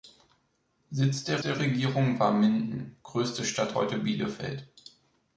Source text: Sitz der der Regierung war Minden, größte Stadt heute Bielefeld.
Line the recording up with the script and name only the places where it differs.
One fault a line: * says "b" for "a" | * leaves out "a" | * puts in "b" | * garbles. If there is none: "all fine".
all fine